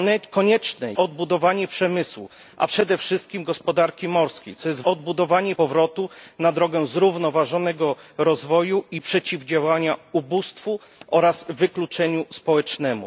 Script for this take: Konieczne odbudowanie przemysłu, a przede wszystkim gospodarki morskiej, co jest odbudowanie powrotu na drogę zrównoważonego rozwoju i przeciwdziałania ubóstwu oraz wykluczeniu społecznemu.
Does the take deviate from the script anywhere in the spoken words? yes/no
no